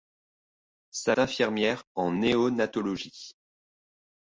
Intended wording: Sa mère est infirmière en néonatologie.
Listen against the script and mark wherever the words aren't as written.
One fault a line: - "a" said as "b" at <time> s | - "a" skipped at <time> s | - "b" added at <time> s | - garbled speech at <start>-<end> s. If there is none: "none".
- "mère est" skipped at 1.1 s